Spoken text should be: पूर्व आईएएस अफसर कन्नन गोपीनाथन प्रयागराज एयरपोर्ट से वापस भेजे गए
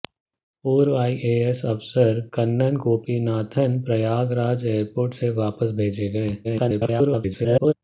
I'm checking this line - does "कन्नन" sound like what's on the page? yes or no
yes